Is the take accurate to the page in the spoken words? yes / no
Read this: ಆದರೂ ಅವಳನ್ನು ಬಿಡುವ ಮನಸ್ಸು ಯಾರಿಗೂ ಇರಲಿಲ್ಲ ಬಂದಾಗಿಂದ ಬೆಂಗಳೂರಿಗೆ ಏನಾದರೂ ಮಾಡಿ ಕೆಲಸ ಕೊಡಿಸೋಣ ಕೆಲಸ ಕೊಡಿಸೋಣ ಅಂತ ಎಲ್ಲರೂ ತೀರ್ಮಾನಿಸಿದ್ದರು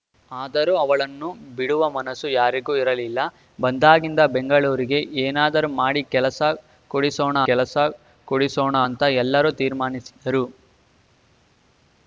yes